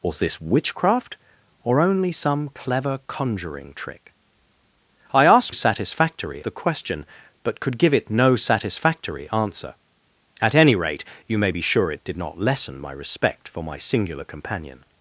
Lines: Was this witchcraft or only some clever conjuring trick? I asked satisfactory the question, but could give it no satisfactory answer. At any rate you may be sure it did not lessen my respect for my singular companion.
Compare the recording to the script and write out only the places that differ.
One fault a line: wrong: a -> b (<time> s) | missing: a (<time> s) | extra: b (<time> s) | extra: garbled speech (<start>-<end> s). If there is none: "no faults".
no faults